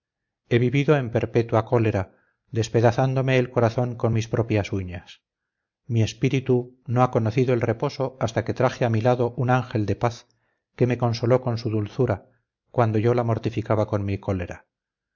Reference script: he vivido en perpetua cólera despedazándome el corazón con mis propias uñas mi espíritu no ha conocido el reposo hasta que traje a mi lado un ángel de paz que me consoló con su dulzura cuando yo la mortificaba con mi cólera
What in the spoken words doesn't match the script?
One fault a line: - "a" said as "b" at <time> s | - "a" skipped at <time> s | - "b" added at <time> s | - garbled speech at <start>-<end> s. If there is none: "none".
none